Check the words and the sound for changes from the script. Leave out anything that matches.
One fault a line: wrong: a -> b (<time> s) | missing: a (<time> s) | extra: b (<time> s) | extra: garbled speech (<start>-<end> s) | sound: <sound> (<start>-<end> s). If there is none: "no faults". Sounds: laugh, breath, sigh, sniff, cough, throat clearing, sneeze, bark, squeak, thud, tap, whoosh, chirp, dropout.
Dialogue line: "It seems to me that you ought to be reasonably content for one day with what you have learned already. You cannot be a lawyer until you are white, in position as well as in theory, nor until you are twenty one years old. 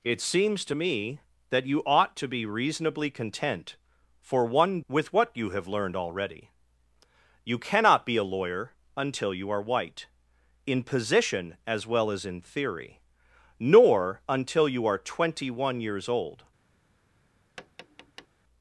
missing: day (4.8 s)
sound: tap (17.6-18.3 s)